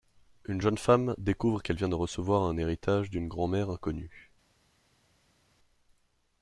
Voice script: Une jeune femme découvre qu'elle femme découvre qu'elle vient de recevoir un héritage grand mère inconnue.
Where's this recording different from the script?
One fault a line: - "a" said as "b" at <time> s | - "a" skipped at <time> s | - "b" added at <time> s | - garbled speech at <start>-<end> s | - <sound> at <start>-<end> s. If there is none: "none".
- "femme découvre qu'elle" skipped at 1.8 s
- "d'une" added at 3.1 s